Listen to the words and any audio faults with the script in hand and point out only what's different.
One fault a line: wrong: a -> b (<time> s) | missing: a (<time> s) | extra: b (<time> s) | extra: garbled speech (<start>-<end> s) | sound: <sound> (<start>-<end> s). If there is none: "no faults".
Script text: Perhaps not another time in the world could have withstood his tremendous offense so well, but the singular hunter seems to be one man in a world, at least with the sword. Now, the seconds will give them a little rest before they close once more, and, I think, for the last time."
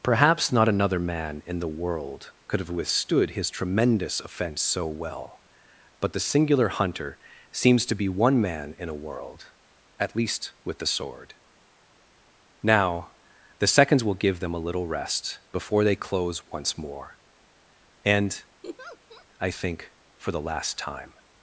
wrong: time -> man (1.0 s)
sound: laugh (18.6-19.3 s)